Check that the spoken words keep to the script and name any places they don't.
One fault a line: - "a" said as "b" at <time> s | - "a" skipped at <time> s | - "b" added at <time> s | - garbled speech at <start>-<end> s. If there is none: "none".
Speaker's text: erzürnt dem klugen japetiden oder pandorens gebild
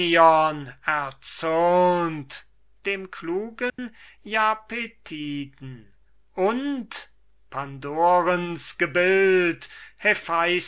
- "oder" said as "und" at 6.3 s